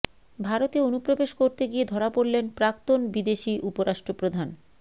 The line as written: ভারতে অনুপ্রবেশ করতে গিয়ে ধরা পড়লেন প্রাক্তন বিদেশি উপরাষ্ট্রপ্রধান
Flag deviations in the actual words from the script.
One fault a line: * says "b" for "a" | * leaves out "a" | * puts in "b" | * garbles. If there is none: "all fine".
all fine